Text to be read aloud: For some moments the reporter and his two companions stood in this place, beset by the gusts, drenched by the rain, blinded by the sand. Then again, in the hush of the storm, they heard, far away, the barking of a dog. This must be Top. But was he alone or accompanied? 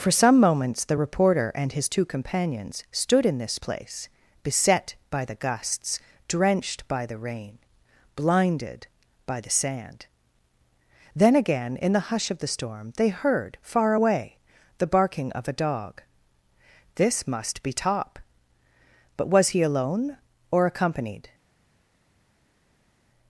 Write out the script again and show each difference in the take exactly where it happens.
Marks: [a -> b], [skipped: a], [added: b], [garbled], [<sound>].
For some moments the reporter and his two companions stood in this place, beset by the gusts, drenched by the rain, blinded by the sand. Then again, in the hush of the storm, they heard, far away, the barking of a dog. This must be Top. But was he alone or accompanied?